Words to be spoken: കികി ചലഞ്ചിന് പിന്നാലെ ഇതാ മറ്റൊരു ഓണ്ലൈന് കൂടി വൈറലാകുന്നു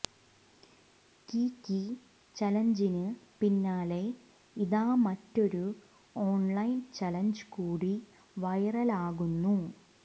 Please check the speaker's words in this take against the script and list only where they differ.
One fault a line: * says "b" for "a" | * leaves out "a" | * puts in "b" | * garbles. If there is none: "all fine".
* puts in "ചലഞ്ച്"